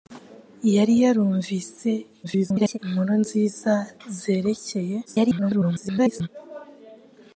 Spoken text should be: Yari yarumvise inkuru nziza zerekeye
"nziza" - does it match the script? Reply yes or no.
yes